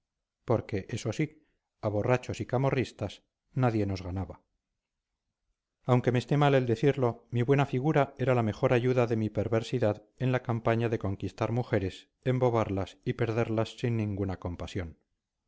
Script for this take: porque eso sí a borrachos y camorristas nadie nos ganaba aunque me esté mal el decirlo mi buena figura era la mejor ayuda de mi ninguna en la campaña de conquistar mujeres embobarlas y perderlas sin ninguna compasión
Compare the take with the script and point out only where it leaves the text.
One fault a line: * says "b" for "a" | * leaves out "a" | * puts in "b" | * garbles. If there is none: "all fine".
* says "perversidad" for "ninguna"